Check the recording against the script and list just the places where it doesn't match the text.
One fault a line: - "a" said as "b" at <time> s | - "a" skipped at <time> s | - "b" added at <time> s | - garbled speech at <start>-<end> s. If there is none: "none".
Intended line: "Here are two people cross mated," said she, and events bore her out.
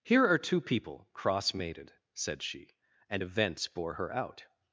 none